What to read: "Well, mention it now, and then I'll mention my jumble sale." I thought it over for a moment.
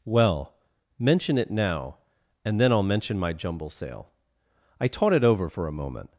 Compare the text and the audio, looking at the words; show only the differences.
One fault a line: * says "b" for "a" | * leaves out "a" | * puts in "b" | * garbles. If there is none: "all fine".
* says "taught" for "thought"